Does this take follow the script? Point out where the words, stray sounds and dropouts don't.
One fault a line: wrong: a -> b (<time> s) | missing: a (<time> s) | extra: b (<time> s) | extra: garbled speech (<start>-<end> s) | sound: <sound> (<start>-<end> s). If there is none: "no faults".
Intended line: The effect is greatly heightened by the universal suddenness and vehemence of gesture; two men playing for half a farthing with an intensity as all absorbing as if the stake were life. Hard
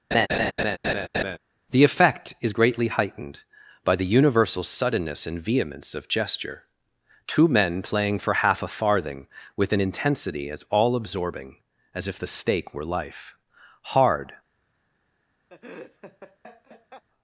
sound: laugh (0.1-1.4 s)
sound: laugh (15.5-17.0 s)